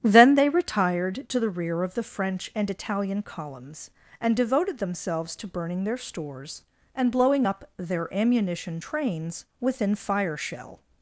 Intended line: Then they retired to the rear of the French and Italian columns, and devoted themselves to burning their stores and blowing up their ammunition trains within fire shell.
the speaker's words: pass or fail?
pass